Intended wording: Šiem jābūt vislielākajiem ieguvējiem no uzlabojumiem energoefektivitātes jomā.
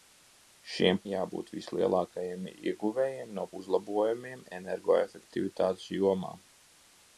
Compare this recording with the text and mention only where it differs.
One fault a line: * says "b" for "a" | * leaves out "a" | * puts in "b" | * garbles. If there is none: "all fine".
all fine